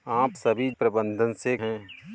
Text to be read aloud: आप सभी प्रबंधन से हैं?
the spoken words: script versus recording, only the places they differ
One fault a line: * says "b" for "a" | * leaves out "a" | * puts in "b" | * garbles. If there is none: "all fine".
all fine